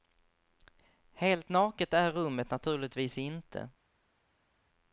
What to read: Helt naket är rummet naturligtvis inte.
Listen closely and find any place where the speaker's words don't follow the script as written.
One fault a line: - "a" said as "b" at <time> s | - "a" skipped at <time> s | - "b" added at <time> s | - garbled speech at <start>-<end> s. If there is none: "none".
none